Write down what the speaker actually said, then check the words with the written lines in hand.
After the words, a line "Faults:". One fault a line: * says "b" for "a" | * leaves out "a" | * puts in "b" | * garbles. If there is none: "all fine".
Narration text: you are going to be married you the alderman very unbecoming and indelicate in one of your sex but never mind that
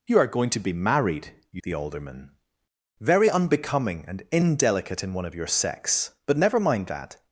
you are going to be married you the alderman very unbecoming and indelicate in one of your sex but never mind that
Faults:
all fine